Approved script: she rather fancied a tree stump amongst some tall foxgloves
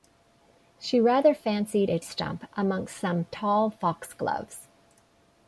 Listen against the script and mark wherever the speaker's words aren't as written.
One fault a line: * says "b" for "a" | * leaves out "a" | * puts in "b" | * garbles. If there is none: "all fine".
* leaves out "tree"